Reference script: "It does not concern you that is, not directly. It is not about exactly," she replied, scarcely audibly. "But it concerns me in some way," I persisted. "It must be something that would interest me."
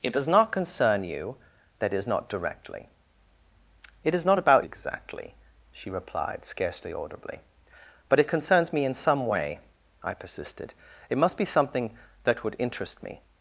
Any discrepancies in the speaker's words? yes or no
no